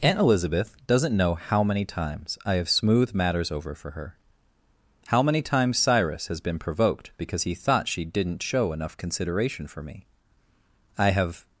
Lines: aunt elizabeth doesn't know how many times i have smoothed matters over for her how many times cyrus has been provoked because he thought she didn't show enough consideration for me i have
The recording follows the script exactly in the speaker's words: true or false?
true